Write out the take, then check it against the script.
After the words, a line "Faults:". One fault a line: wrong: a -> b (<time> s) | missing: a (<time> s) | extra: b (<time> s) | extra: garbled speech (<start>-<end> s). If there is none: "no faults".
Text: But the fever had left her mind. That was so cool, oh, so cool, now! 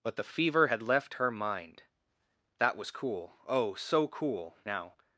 But the fever had left her mind. That was cool, oh, so cool, now!
Faults:
missing: so (2.9 s)